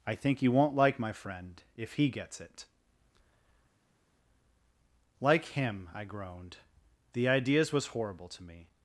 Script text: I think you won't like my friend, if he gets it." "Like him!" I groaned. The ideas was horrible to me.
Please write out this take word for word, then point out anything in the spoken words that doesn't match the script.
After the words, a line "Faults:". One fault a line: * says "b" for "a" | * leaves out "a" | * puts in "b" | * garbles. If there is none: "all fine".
I think you won't like my friend, if he gets it." "Like him!" I groaned. The ideas was horrible to me.
Faults:
all fine